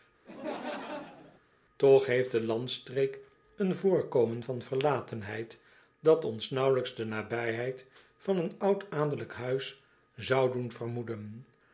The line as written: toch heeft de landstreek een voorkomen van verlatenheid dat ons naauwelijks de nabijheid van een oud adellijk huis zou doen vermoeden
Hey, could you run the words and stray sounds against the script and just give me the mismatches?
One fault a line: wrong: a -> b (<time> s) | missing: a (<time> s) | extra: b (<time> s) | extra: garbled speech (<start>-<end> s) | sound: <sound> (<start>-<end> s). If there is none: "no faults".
sound: laugh (0.3-1.4 s)